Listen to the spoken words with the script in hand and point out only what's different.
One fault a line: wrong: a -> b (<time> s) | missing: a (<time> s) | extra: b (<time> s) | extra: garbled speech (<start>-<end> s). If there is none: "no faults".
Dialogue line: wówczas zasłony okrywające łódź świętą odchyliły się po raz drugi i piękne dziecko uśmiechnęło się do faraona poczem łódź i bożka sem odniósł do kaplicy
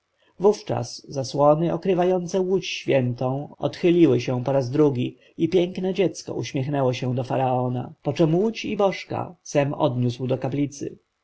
no faults